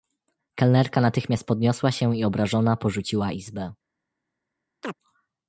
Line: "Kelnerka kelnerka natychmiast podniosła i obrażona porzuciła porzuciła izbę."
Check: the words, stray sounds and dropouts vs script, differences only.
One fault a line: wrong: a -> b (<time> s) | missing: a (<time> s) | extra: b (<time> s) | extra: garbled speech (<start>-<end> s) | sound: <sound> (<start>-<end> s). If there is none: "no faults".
missing: kelnerka (1.0 s)
extra: się (1.9 s)
missing: porzuciła (3.3 s)
sound: chirp (4.8-5.0 s)